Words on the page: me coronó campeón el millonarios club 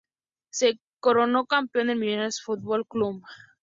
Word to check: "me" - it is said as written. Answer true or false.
false